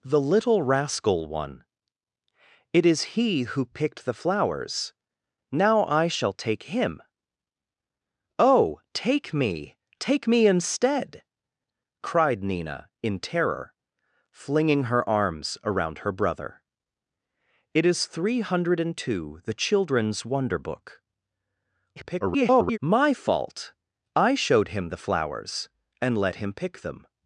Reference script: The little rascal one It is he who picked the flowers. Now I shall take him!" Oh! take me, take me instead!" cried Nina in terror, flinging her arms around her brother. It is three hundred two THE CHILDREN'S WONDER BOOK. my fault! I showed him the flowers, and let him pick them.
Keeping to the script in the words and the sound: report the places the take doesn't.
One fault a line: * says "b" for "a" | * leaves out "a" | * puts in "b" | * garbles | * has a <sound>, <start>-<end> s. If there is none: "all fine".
* garbles